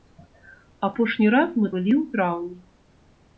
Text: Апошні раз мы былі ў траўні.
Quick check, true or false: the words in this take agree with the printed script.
true